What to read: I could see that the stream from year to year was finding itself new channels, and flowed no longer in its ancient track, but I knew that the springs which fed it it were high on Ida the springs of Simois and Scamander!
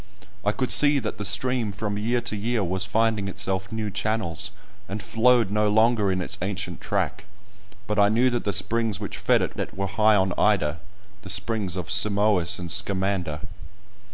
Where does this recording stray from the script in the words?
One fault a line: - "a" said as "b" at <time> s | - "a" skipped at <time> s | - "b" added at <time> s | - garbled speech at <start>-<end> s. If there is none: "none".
none